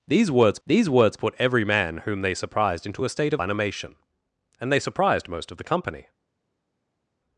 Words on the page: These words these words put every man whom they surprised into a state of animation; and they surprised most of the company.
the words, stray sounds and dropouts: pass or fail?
pass